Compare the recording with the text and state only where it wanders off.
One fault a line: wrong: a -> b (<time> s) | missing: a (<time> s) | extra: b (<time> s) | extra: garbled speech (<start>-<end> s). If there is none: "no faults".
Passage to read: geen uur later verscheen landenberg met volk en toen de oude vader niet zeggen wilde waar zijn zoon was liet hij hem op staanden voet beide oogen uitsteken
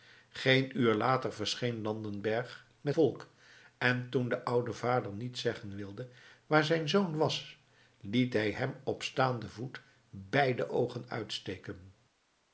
no faults